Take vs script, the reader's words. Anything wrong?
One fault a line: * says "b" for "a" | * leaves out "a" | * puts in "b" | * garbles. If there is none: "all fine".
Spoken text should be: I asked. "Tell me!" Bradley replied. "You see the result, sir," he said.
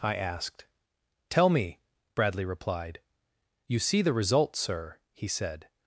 all fine